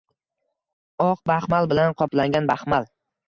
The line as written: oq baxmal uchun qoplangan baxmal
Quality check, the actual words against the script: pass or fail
fail